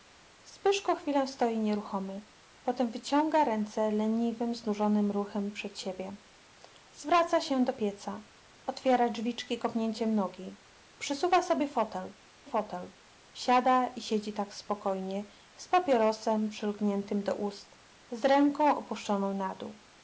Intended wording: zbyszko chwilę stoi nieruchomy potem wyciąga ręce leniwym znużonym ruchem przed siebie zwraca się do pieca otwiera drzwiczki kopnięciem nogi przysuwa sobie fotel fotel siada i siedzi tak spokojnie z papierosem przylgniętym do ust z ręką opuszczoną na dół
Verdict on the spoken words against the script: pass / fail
pass